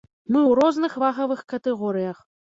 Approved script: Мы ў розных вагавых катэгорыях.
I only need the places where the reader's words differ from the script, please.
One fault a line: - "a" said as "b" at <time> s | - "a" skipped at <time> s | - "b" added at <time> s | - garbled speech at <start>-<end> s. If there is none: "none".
none